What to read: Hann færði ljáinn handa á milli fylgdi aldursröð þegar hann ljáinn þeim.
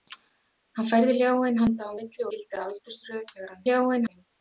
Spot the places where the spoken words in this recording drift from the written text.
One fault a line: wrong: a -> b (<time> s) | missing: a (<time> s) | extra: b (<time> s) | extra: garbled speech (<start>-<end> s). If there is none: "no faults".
no faults